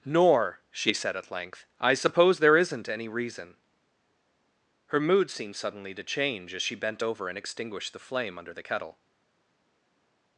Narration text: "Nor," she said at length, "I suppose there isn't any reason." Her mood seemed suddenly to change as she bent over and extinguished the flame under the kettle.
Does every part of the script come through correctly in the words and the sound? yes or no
yes